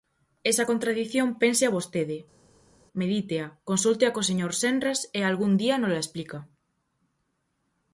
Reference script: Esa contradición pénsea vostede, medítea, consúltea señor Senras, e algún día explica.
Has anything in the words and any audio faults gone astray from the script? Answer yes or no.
yes